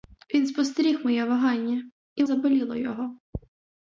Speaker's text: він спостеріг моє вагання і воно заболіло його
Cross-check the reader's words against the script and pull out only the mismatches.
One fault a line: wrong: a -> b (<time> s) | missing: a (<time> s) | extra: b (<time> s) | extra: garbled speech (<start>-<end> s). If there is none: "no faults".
missing: воно (2.2 s)